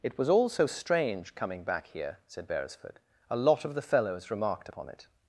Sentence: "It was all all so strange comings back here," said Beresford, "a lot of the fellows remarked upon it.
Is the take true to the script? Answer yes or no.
no